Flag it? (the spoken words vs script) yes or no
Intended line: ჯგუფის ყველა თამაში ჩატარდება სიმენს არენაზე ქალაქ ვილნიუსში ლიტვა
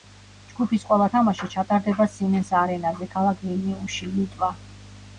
no